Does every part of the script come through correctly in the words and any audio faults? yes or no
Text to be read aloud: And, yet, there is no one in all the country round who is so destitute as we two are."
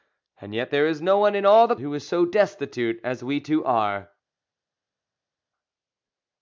no